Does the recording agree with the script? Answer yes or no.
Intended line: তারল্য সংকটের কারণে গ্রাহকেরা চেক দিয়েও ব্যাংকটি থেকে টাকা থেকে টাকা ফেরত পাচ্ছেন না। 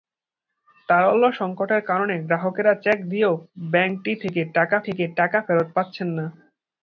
yes